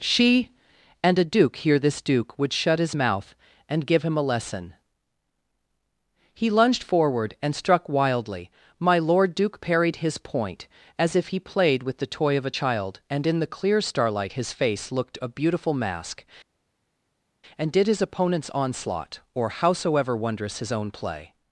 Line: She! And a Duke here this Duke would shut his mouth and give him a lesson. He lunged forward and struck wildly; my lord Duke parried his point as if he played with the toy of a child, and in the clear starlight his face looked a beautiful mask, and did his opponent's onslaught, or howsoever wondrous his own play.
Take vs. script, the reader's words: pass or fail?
pass